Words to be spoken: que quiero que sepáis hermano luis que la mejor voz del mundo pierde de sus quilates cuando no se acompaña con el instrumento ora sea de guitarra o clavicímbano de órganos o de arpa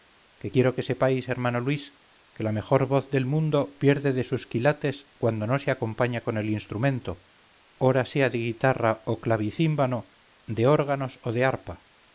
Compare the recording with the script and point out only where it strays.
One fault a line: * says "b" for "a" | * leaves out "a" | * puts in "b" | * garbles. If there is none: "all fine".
all fine